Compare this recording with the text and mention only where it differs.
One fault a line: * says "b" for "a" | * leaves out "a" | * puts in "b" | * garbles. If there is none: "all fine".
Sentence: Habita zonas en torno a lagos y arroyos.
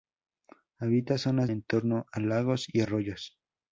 all fine